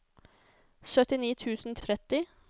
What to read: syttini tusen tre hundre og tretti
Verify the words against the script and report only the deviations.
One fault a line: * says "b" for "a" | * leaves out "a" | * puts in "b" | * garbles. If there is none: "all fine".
* leaves out "tre hundre"